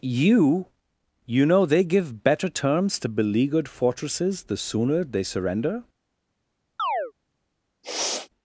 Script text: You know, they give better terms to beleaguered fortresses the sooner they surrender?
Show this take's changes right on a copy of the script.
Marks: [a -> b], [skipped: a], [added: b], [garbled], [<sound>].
You [added: you] know, they give better terms to beleaguered fortresses the sooner they surrender? [chirp] [sniff]